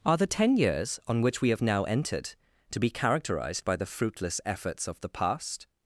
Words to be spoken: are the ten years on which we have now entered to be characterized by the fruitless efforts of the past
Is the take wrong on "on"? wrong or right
right